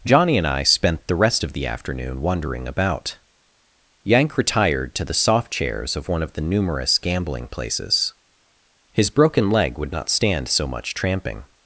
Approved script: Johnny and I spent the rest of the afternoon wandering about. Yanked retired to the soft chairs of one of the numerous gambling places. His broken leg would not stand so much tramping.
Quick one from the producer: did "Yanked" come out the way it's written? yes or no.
no